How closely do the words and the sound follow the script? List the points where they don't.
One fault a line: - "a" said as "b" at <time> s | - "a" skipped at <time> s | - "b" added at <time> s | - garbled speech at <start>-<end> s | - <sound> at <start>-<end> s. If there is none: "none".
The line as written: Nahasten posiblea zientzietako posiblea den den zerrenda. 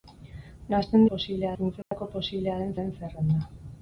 - dropout at 1.8-1.9 s